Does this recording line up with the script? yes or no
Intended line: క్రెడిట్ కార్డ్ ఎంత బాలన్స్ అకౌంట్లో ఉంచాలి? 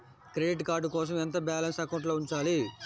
no